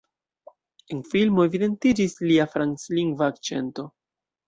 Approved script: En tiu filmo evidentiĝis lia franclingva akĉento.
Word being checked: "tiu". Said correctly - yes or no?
no